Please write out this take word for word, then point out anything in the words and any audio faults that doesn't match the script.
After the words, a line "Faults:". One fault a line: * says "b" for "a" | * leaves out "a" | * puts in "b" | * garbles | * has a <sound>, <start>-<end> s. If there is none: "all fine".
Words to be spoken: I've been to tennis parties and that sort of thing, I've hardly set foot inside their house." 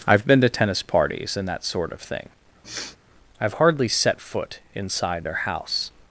I've been to tennis parties and that sort of thing, I've hardly set foot inside their house."
Faults:
* has a sniff, 2.6-3.0 s